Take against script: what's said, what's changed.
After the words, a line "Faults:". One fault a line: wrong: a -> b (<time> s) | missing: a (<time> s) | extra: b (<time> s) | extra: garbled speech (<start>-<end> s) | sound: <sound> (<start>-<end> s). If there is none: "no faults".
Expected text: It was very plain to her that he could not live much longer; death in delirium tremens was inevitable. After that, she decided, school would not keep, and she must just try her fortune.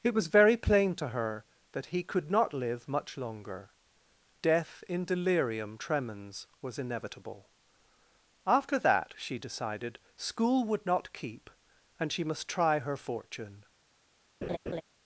It was very plain to her that he could not live much longer; death in delirium tremens was inevitable. After that, she decided, school would not keep, and she must try her fortune.
Faults:
missing: just (12.5 s)
sound: laugh (14.4-14.8 s)